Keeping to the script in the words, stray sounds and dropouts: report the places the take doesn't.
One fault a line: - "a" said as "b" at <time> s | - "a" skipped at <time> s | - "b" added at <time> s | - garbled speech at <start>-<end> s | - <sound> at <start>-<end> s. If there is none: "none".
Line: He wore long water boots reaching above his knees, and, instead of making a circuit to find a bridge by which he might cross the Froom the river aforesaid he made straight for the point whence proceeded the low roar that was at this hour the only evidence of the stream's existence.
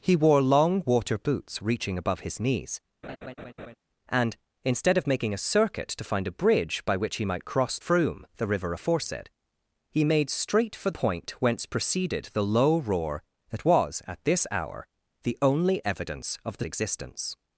- laugh at 3.0-3.8 s
- "the" skipped at 7.8 s
- "the" skipped at 10.9 s
- "stream's" skipped at 16.7 s